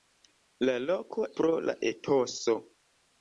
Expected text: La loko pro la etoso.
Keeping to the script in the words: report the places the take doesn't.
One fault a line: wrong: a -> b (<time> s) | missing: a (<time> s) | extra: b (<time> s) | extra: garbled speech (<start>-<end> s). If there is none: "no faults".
no faults